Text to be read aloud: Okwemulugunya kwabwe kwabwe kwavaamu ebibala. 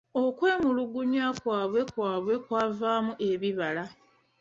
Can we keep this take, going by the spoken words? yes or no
yes